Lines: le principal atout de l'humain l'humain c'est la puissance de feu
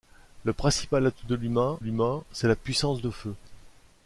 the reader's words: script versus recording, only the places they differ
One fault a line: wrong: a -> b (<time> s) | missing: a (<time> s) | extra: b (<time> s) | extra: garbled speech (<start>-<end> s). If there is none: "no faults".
no faults